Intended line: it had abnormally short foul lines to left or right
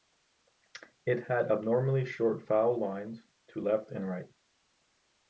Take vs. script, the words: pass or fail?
fail